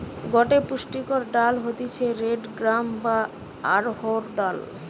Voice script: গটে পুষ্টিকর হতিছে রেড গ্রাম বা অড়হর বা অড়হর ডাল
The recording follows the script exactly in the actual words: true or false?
false